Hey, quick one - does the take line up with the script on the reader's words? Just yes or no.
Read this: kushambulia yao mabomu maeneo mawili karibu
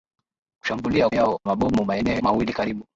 yes